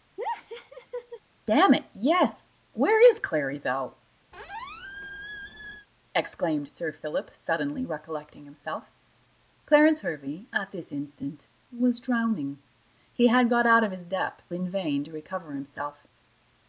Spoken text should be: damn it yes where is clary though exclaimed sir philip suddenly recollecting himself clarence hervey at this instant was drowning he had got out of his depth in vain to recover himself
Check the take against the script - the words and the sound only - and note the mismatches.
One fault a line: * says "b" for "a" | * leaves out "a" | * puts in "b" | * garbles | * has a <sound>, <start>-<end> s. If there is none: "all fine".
* has a laugh, 0.2-1.2 s
* has a squeak, 4.3-5.9 s